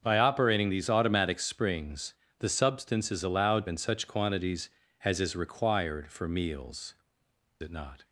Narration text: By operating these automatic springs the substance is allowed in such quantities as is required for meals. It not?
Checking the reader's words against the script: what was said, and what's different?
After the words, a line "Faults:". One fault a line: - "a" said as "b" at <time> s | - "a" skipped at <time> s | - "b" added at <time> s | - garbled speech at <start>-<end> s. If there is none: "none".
By operating these automatic springs the substance is allowed in such quantities as is required for meals. It not?
Faults:
none